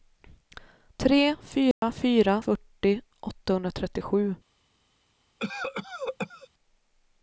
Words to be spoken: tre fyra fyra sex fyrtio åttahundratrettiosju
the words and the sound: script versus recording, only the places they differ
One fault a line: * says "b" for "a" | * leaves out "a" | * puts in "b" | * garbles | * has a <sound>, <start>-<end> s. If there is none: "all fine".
* has a dropout, 1.7-1.8 s
* leaves out "sex"
* has a cough, 5.4-6.5 s